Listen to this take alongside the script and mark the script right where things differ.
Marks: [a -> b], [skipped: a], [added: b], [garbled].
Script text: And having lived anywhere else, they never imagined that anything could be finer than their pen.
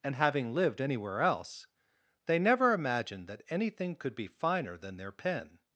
And having lived anywhere else, they never imagined that anything could be finer than their pen.